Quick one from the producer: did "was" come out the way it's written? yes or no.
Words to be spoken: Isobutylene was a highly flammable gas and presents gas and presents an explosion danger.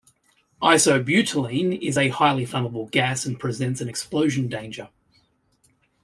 no